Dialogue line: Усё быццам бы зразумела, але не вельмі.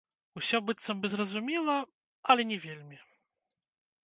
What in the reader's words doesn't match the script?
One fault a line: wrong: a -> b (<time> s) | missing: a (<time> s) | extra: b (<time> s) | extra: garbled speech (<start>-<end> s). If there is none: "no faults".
no faults